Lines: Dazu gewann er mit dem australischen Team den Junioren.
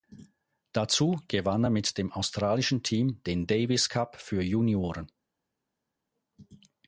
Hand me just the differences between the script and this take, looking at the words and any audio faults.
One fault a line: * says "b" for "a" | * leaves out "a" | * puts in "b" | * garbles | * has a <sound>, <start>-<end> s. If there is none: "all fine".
* puts in "Davis Cup für"